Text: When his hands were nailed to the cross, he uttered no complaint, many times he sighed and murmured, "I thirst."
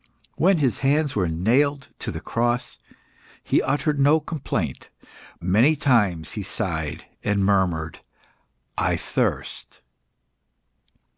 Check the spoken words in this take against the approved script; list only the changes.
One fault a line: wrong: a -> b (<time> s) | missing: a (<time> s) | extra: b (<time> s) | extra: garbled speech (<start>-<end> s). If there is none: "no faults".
no faults